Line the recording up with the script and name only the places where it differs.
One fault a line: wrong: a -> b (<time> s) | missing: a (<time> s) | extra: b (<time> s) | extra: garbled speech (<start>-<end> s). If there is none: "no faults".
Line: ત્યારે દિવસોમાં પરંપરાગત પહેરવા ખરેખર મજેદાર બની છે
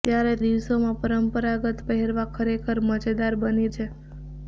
no faults